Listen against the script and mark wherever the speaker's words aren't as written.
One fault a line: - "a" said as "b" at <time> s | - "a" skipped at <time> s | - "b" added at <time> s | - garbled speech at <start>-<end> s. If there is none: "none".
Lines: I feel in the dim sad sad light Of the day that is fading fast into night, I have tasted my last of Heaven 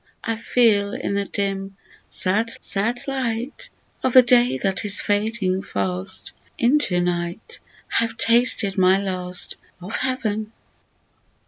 none